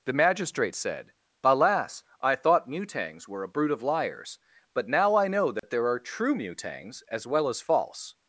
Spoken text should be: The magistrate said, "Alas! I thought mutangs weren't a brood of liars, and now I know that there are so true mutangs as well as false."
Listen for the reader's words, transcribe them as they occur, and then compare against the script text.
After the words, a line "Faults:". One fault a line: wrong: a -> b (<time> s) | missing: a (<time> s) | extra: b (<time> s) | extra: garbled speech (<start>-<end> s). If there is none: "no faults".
The magistrate said, "Alas! I thought mutangs were a brood of liars, but now I know that there are true mutangs as well as false."
Faults:
wrong: weren't -> were (3.3 s)
wrong: and -> but (4.7 s)
missing: so (6.0 s)